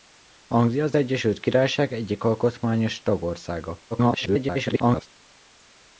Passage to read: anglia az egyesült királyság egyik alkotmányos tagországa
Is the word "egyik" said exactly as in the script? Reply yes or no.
yes